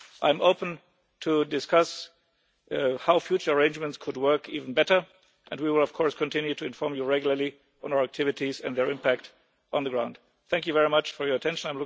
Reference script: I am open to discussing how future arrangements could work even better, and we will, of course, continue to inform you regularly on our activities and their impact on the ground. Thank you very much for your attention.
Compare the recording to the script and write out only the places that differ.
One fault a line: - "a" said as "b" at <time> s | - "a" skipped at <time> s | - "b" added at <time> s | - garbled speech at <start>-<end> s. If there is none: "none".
none